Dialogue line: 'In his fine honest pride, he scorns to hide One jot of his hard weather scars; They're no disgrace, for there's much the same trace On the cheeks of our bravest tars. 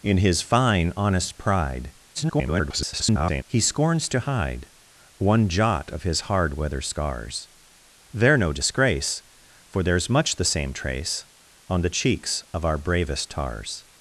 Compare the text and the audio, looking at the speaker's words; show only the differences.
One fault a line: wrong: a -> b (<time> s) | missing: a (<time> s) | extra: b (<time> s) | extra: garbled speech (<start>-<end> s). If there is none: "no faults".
extra: garbled speech (2.1-3.4 s)